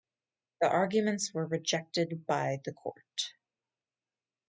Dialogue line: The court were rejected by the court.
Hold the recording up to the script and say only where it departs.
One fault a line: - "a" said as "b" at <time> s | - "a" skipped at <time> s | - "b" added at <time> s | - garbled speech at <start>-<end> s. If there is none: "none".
- "court" said as "arguments" at 0.7 s